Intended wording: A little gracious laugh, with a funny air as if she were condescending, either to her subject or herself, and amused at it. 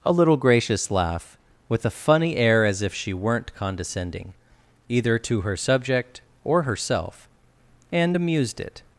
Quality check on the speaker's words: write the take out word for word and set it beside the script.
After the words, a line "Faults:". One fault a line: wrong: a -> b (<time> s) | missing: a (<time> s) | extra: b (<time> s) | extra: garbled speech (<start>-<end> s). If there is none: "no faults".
A little gracious laugh, with a funny air as if she weren't condescending, either to her subject or herself, and amused it.
Faults:
wrong: were -> weren't (3.1 s)
missing: at (8.6 s)